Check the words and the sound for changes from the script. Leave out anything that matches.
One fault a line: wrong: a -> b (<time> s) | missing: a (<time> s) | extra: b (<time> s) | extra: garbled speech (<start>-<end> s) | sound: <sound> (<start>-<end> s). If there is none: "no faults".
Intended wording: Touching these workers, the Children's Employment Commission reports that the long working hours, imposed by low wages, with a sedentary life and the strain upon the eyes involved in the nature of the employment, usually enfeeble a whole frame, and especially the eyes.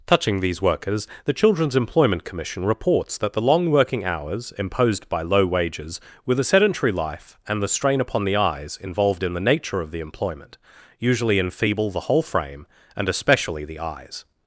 wrong: a -> the (11.9 s)